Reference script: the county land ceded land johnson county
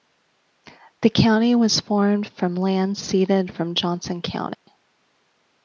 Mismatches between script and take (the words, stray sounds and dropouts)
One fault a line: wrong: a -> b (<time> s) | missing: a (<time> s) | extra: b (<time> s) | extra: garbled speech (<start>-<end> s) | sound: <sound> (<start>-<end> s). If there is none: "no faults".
extra: was formed from (1.5 s)
wrong: land -> from (3.5 s)
sound: dropout (4.5-4.7 s)